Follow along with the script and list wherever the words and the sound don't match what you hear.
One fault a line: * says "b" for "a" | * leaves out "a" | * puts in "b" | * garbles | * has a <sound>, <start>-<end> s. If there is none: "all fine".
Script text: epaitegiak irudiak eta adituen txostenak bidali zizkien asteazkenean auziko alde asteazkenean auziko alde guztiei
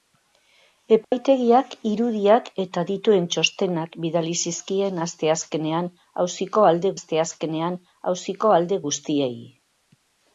* has a dropout, 1.0-1.1 s